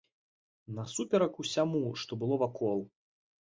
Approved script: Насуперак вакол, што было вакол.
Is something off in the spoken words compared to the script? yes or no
yes